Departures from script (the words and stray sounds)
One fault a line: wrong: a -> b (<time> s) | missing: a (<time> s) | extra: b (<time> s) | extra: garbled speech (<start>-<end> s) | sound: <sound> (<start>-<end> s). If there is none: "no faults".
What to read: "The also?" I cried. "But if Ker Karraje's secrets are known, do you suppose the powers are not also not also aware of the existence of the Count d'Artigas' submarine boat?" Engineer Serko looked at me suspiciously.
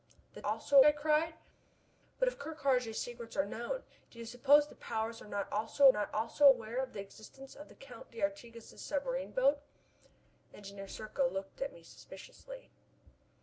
no faults